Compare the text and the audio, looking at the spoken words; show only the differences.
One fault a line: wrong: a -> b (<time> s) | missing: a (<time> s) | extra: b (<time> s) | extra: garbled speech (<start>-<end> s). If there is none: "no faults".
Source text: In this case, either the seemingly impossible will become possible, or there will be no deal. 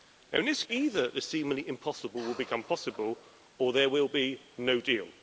missing: case (0.6 s)